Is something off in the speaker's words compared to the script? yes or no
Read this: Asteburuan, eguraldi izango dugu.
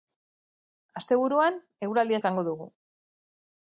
no